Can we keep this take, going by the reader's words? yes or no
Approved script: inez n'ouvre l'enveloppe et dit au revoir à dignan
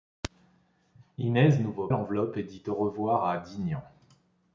yes